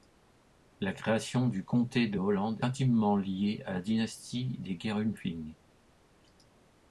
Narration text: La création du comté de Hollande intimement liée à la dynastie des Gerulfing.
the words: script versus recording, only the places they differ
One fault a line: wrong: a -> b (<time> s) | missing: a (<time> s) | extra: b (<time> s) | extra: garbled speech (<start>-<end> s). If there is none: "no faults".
no faults